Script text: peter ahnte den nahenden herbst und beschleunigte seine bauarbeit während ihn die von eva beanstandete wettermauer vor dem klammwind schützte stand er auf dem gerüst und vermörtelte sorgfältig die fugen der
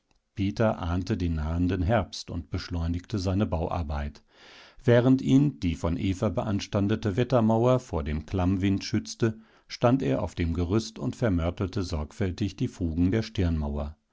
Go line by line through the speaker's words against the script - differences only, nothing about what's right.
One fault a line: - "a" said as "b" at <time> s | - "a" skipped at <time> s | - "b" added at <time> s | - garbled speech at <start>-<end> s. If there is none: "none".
none